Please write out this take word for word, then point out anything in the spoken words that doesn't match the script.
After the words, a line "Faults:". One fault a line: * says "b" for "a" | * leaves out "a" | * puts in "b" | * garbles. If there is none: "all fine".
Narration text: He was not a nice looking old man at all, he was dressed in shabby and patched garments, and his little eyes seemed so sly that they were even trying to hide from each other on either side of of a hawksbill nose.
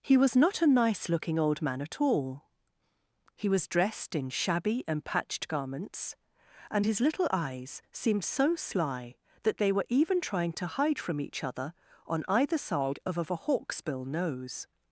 He was not a nice looking old man at all, he was dressed in shabby and patched garments, and his little eyes seemed so sly that they were even trying to hide from each other on either side of of a hawksbill nose.
Faults:
all fine